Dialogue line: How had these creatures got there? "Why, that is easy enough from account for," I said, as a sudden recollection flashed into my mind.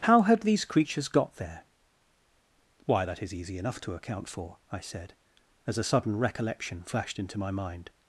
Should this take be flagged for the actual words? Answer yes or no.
yes